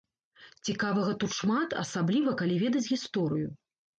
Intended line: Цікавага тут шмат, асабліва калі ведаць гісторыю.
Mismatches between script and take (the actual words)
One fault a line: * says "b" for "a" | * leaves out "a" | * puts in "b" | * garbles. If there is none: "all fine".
all fine